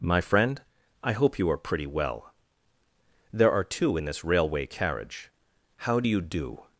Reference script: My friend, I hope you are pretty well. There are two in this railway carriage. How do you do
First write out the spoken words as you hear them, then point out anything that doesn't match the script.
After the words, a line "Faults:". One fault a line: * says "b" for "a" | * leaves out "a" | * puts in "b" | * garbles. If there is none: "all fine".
My friend, I hope you are pretty well. There are two in this railway carriage. How do you do
Faults:
all fine